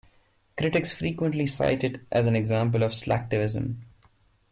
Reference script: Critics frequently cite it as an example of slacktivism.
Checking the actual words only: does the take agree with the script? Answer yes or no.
yes